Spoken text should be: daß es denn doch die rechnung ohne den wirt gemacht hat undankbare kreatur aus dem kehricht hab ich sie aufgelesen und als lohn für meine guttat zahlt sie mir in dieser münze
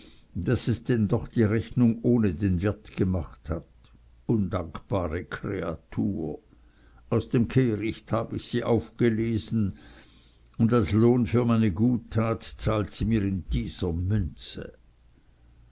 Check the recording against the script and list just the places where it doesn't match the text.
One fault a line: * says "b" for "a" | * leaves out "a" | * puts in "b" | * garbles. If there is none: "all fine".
all fine